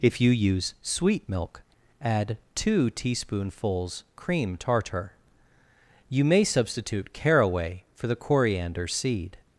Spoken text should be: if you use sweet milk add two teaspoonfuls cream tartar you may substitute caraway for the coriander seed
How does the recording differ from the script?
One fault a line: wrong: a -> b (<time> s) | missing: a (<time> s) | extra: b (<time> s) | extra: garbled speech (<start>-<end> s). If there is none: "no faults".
no faults